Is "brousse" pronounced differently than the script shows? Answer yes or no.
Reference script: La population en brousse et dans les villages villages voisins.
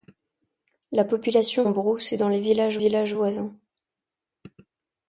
no